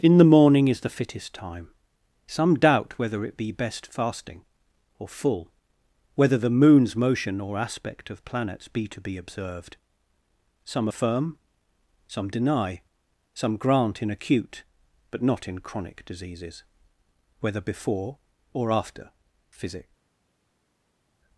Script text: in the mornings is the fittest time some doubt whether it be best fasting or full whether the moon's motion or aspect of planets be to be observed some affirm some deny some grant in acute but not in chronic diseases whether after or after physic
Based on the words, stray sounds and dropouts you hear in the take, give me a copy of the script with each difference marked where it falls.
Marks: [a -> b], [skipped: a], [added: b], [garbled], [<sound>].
in the [mornings -> morning] is the fittest time some doubt whether it be best fasting or full whether the moon's motion or aspect of planets be to be observed some affirm some deny some grant in acute but not in chronic diseases whether [after -> before] or after physic